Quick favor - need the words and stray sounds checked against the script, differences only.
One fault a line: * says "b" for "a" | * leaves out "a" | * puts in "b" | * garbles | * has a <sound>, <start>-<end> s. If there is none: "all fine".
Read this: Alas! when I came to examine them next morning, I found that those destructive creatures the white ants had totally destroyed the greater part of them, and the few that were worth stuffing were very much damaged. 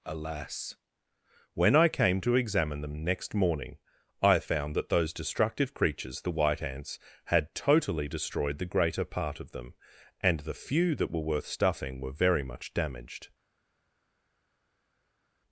all fine